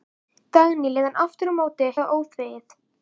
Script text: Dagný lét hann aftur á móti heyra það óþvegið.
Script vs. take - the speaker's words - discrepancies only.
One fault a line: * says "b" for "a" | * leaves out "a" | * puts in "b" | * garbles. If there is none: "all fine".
* leaves out "heyra"